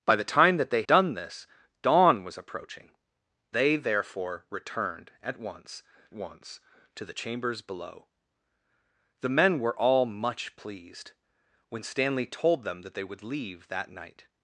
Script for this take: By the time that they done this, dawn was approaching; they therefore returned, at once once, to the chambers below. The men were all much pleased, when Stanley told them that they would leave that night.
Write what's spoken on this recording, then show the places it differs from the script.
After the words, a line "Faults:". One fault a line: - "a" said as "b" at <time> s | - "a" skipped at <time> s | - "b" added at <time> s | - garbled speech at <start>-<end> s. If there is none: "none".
By the time that they done this, dawn was approaching; they therefore returned, at once once, to the chambers below. The men were all much pleased, when Stanley told them that they would leave that night.
Faults:
none